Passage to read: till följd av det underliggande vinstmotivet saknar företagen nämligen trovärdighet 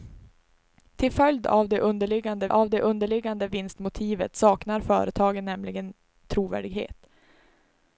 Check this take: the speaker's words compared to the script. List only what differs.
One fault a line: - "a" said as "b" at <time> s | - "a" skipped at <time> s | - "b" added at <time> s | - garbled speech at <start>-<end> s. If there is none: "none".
- "av det underliggande" added at 2.5 s